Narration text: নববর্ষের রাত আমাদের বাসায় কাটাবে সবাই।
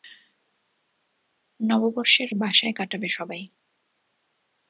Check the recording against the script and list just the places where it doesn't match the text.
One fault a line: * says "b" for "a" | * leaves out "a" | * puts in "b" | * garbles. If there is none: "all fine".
* leaves out "রাত আমাদের"